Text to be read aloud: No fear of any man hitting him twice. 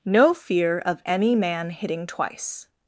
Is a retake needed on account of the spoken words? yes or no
yes